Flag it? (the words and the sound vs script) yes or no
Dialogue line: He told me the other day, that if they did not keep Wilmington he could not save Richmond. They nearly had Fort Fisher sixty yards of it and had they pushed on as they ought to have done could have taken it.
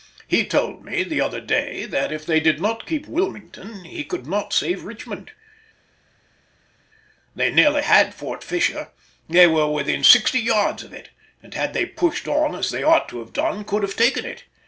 yes